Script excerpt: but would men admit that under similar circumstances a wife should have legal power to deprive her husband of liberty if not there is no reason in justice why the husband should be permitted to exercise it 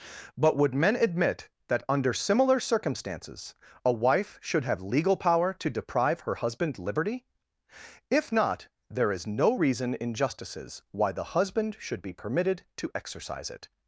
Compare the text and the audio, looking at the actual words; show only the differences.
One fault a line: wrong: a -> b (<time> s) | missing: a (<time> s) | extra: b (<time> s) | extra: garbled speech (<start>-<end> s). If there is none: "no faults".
missing: of (6.8 s)
wrong: justice -> justices (10.2 s)